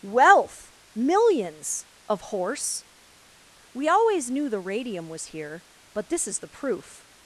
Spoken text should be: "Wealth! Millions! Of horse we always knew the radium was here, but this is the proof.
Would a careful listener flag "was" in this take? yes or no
no